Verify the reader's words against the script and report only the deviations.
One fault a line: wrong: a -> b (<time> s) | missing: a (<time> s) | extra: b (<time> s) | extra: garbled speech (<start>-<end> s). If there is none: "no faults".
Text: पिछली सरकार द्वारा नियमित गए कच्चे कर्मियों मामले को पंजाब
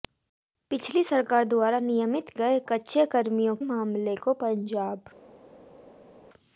no faults